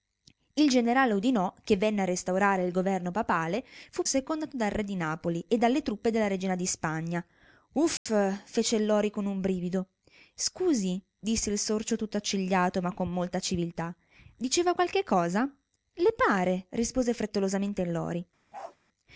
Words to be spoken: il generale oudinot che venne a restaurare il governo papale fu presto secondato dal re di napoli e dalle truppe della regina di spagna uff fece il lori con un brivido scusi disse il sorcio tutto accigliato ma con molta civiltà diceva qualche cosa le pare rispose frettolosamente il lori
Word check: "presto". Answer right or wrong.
wrong